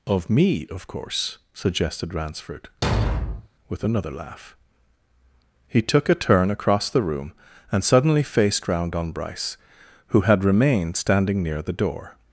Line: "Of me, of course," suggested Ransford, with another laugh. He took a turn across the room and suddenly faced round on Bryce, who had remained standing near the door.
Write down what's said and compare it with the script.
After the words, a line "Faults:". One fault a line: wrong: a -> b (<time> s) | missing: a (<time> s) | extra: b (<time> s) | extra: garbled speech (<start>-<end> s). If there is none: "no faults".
"Of me, of course," suggested Ransford, with another laugh. He took a turn across the room and suddenly faced round on Bryce, who had remained standing near the door.
Faults:
no faults